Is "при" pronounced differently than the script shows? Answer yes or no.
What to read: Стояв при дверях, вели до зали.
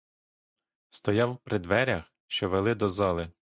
no